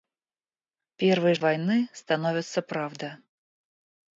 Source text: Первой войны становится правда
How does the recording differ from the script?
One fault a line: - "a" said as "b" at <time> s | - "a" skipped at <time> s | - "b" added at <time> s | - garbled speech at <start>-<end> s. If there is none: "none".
none